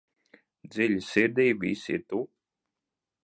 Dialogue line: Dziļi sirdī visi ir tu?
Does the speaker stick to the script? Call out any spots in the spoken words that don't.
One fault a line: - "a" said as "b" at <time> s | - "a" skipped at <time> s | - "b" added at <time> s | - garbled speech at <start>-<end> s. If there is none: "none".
none